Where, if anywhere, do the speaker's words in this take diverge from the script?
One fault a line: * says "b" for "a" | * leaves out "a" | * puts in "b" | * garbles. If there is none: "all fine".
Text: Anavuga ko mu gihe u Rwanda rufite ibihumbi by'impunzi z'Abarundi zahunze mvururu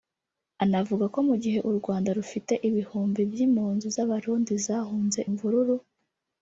all fine